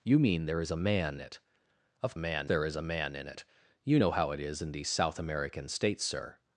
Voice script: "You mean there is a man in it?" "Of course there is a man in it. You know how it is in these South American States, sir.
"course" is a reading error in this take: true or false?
true